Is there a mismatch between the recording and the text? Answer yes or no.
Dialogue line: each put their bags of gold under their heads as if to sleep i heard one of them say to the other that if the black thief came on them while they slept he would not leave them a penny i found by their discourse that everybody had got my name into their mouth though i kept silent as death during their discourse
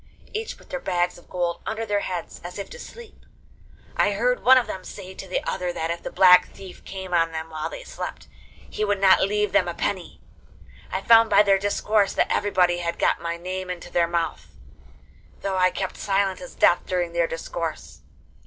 no